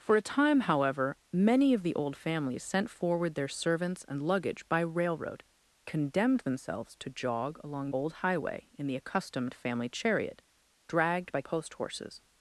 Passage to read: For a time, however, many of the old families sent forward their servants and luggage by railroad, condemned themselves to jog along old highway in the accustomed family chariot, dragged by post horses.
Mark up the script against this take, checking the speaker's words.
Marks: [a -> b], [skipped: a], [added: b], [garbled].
For a time, however, many of the old families sent forward their servants and luggage by railroad, condemned themselves to jog along old highway in the accustomed family chariot, dragged by post horses.